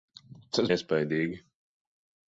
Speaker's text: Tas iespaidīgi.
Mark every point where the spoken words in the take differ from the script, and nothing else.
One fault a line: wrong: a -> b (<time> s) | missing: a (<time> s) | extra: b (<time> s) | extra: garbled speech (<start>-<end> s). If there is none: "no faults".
no faults